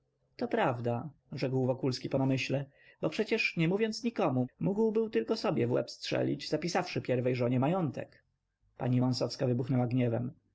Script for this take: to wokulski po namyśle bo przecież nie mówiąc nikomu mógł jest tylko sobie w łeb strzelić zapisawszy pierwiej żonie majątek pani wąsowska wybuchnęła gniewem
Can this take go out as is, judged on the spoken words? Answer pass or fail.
fail